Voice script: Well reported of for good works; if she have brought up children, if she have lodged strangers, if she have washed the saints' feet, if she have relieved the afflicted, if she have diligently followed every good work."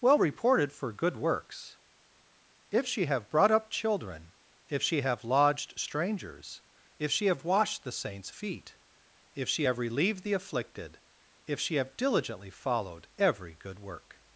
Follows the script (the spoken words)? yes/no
no